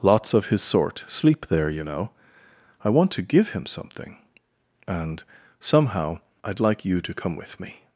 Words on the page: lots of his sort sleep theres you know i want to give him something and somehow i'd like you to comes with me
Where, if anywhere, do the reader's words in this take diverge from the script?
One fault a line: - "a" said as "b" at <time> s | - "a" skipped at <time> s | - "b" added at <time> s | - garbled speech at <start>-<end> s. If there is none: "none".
- "theres" said as "there" at 1.5 s
- "comes" said as "come" at 7.1 s